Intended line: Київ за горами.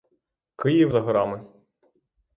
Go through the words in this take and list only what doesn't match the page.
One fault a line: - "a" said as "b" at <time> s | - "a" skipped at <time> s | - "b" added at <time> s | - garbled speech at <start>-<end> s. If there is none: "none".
none